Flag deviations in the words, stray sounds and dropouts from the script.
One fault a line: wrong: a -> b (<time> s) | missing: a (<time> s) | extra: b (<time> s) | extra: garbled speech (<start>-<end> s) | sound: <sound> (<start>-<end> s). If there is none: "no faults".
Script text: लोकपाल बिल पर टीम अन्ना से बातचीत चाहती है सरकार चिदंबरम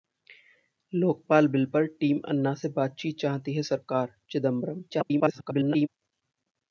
extra: garbled speech (4.9-5.9 s)